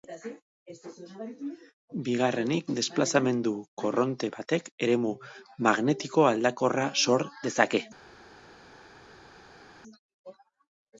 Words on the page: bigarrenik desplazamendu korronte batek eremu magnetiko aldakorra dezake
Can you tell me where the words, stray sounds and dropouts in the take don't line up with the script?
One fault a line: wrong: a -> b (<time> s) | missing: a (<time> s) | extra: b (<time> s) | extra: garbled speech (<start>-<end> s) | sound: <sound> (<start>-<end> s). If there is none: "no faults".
extra: sor (7.0 s)